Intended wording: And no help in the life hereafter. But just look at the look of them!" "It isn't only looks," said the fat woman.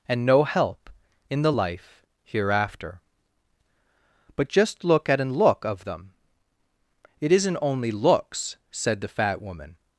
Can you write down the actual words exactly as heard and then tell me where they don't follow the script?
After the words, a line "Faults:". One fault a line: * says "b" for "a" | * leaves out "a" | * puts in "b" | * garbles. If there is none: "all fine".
And no help in the life hereafter. But just look at an look of them!" "It isn't only looks," said the fat woman.
Faults:
* says "an" for "the"